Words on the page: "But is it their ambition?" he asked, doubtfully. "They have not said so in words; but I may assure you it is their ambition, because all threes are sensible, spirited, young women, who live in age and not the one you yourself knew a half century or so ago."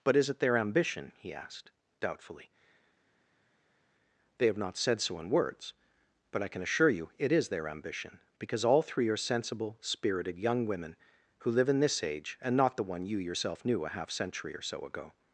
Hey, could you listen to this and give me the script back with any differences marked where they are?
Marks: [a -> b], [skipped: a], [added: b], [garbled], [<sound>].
"But is it their ambition?" he asked, doubtfully. "They have not said so in words; but I [may -> can] assure you it is their ambition, because all [threes -> three] are sensible, spirited, young women, who live in [added: this] age and not the one you yourself knew a half century or so ago."